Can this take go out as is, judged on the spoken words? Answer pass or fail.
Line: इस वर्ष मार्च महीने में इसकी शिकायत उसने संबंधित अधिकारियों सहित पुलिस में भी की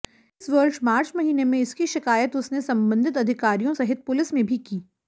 pass